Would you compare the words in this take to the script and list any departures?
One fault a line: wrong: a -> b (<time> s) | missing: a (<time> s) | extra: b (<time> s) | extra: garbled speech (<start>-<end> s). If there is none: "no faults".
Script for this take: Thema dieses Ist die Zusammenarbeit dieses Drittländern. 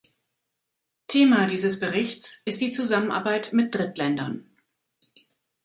extra: Berichts (1.8 s)
wrong: dieses -> mit (3.5 s)